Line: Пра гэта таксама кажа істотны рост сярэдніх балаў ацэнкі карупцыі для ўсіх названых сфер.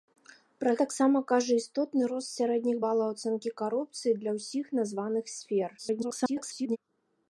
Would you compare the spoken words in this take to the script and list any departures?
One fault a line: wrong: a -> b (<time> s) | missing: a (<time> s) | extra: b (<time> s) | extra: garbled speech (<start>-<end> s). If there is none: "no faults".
missing: гэта (0.7 s)
extra: garbled speech (5.8-6.8 s)